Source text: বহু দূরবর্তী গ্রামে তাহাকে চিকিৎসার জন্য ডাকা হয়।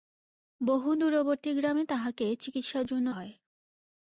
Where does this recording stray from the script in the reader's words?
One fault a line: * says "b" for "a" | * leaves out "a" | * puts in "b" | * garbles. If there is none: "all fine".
* leaves out "ডাকা"